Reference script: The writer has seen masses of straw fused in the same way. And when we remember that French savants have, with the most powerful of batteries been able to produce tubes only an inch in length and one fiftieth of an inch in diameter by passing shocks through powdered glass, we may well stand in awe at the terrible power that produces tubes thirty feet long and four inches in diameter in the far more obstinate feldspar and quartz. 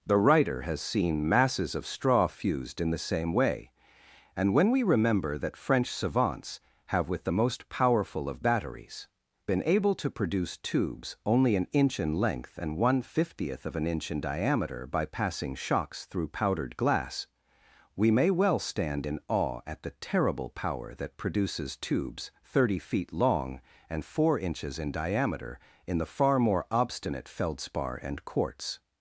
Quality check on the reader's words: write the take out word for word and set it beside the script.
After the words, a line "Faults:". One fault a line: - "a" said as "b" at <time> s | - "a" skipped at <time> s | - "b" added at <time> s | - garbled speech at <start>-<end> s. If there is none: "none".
The writer has seen masses of straw fused in the same way. And when we remember that French savants have, with the most powerful of batteries been able to produce tubes only an inch in length and one fiftieth of an inch in diameter by passing shocks through powdered glass, we may well stand in awe at the terrible power that produces tubes thirty feet long and four inches in diameter in the far more obstinate feldspar and quartz.
Faults:
none